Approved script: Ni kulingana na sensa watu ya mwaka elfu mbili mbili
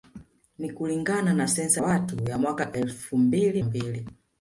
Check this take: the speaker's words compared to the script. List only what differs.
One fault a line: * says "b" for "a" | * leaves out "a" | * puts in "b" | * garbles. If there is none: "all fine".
all fine